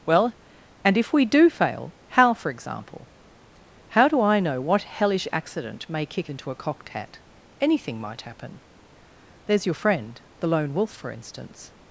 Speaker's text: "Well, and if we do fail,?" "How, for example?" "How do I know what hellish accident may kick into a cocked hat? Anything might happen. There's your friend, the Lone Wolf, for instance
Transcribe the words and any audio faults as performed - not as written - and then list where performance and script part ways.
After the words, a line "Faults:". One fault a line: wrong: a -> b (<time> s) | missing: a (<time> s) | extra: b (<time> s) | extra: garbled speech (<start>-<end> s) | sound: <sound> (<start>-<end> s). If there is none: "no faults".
"Well, and if we do fail,?" "How, for example?" "How do I know what hellish accident may kick into a cocked hat? Anything might happen. There's your friend, the Lone Wolf, for instance
Faults:
no faults